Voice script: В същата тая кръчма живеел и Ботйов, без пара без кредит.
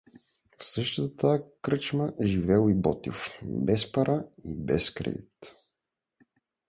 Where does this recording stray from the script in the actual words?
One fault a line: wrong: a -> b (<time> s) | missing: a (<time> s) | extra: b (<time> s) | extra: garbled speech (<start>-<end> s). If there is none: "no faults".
extra: и (4.4 s)